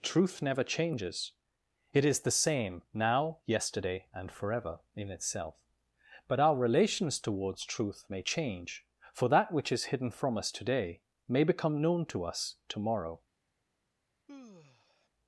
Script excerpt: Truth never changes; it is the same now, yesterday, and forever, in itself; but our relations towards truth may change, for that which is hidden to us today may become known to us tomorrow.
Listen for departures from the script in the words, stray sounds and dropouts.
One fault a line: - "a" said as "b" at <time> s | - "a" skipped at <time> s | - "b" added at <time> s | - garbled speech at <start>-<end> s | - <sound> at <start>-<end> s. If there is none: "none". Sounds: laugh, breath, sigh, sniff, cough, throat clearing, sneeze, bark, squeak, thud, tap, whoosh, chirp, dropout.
- "to" said as "from" at 10.1 s
- sigh at 14.3-15.1 s